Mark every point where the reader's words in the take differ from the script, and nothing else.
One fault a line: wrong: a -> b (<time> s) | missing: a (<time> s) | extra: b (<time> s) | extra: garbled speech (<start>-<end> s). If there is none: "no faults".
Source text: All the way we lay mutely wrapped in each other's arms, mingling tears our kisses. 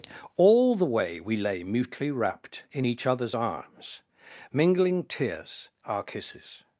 no faults